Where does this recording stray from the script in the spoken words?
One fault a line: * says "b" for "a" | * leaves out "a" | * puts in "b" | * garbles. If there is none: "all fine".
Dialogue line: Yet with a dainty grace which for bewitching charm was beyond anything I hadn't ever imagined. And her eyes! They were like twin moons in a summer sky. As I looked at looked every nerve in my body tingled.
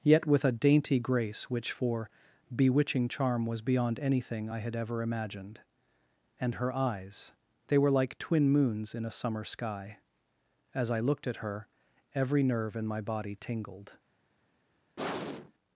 * says "had" for "hadn't"
* says "her" for "looked"